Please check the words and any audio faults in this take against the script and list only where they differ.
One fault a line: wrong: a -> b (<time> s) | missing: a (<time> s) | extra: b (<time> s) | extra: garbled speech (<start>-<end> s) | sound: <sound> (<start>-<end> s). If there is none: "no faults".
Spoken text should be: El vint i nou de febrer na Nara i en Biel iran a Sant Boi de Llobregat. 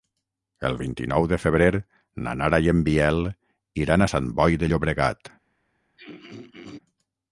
sound: throat clearing (6.0-6.8 s)